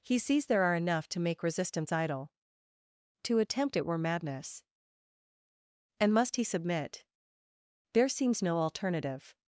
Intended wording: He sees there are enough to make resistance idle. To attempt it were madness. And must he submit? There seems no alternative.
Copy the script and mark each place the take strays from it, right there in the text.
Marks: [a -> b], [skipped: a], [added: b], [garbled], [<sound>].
He sees there are enough to make resistance idle. To attempt it were madness. And must he submit? There seems no alternative.